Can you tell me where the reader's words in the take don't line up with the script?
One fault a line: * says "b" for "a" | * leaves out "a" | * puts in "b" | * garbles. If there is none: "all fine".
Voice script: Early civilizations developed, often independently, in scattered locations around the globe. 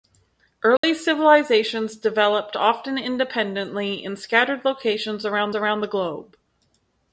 * puts in "around"